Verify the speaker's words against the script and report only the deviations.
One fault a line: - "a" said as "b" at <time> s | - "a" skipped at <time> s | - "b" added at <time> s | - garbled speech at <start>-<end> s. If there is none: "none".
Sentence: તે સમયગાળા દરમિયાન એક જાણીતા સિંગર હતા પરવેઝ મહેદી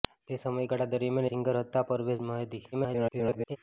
- "એક જાણીતા" skipped at 1.3 s
- garbled speech at 2.7-3.6 s